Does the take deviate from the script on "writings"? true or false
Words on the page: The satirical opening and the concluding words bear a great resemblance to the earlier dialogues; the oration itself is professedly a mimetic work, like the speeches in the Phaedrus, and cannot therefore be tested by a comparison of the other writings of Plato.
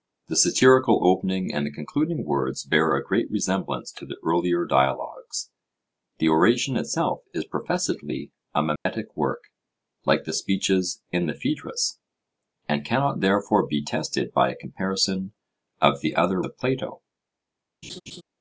true